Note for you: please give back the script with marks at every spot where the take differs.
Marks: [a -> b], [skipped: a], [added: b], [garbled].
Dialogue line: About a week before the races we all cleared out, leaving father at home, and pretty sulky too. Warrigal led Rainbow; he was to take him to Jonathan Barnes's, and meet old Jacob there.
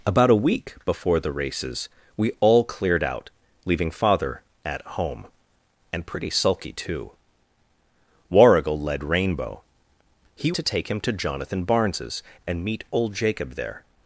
About a week before the races we all cleared out, leaving father at home, and pretty sulky too. Warrigal led Rainbow; he [skipped: was] to take him to Jonathan Barnes's, and meet old Jacob there.